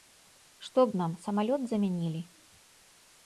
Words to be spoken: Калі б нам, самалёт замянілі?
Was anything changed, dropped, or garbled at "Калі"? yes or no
yes